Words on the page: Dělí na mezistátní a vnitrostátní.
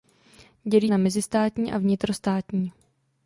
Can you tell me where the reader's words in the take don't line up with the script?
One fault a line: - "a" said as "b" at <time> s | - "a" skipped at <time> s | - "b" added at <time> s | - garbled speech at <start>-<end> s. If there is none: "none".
none